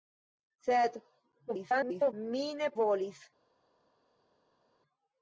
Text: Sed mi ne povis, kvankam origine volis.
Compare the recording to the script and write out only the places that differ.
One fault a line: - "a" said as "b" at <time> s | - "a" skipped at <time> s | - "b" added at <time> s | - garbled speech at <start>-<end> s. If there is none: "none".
- garbled speech at 1.5-2.1 s
- "povis kvankam origine" skipped at 2.7 s